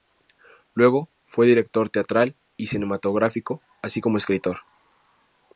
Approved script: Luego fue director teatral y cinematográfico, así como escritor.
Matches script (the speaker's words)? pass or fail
pass